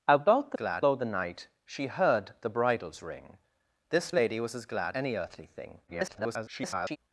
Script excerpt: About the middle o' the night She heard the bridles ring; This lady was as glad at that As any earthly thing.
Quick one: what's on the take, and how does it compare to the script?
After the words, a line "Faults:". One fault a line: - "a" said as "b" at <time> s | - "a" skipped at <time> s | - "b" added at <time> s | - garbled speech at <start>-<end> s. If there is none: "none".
About the glad o' the night She heard the bridles ring; This lady was as glad any earthly thing. [garbled]
Faults:
- "middle" said as "glad" at 0.5 s
- "at that As" skipped at 5.0 s
- garbled speech at 5.9-7.0 s